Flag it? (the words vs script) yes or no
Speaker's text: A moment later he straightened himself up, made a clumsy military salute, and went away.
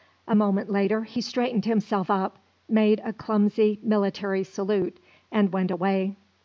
no